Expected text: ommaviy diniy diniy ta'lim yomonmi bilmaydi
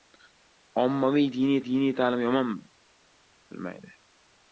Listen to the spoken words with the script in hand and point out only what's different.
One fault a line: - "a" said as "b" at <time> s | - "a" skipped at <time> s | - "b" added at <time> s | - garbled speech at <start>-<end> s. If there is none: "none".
none